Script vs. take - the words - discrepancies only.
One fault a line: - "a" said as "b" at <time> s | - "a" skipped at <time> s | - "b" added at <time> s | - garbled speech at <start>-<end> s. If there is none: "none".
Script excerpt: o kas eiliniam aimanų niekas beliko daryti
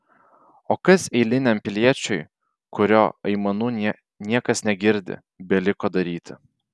- "piliečiui kurio" added at 1.7 s
- "negirdi" added at 4.7 s